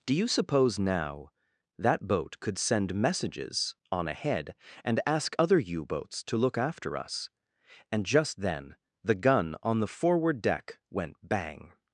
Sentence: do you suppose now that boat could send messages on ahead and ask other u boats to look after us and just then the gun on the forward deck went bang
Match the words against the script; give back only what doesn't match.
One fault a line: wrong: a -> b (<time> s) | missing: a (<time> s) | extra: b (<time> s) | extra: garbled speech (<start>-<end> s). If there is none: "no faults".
no faults